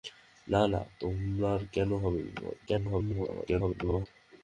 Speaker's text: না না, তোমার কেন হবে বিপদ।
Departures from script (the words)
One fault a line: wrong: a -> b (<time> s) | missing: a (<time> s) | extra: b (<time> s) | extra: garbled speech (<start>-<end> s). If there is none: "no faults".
extra: garbled speech (2.7-4.1 s)